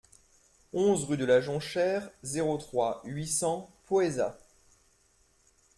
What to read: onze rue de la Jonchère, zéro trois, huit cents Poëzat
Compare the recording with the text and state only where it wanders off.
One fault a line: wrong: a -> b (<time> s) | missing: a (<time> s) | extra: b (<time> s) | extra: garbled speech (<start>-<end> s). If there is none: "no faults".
no faults